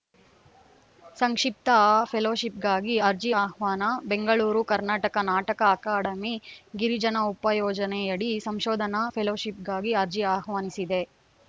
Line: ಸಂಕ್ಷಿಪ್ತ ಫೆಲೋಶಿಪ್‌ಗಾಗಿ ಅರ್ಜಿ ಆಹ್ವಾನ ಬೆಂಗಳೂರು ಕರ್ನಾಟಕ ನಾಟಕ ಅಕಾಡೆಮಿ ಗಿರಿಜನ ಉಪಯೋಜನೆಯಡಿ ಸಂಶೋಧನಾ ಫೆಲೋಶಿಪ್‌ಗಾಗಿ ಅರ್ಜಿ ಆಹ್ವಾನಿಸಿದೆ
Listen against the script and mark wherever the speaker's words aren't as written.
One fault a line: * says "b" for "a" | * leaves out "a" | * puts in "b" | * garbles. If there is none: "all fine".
all fine